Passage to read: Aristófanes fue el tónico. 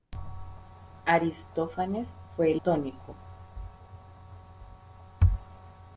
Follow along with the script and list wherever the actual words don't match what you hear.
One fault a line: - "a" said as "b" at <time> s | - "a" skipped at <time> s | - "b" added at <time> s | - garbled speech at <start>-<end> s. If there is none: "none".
none